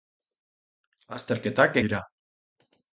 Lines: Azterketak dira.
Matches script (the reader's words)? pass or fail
pass